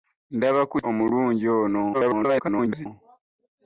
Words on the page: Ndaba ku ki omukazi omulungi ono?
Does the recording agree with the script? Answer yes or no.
no